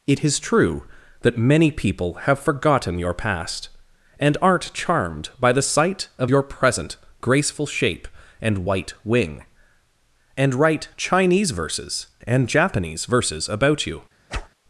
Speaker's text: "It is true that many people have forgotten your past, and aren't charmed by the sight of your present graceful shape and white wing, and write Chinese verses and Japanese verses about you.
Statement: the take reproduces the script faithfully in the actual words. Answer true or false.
true